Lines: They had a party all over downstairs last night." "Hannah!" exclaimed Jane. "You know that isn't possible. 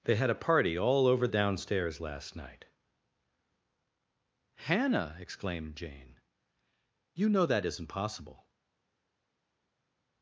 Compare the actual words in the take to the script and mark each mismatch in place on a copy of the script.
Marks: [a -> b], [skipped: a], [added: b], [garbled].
They had a party all over downstairs last night." "Hannah!" exclaimed Jane. "You know that isn't possible.